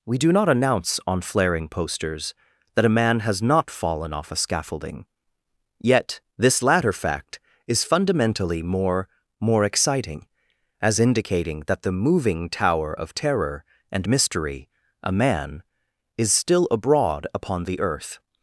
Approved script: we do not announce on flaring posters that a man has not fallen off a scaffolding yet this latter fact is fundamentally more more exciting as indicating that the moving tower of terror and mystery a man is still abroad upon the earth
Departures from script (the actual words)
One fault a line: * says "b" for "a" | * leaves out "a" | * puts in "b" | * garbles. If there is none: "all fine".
all fine